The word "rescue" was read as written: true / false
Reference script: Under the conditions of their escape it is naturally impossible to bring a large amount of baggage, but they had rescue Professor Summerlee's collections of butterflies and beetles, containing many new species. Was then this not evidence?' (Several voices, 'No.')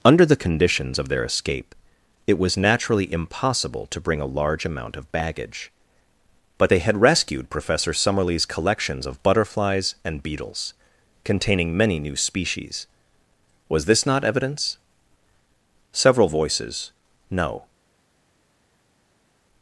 false